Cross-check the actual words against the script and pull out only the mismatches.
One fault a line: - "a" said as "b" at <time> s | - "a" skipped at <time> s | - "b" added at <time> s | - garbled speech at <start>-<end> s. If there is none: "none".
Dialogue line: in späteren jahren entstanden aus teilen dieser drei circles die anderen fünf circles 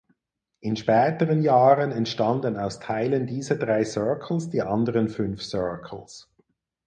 none